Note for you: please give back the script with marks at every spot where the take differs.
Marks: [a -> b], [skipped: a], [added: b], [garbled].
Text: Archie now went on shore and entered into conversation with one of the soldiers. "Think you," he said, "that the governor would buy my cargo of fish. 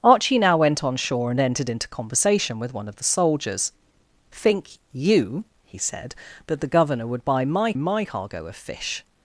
Archie now went on shore and entered into conversation with one of the soldiers. "Think you," he said, "that the governor would buy my [added: my] cargo of fish.